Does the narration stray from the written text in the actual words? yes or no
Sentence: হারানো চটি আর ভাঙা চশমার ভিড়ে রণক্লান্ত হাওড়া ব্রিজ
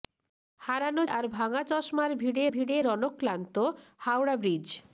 yes